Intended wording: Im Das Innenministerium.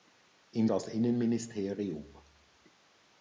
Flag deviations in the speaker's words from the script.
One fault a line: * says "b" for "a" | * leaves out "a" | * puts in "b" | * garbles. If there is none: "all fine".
all fine